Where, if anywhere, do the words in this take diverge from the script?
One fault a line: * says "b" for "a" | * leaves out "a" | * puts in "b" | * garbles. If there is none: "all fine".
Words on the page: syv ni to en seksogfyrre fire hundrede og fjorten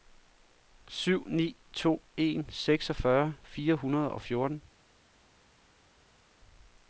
all fine